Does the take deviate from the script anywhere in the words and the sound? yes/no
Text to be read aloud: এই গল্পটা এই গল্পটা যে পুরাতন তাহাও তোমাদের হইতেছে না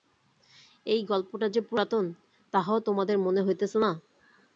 yes